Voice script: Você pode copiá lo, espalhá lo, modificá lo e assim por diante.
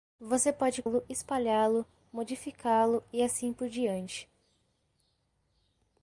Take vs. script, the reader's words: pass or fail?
fail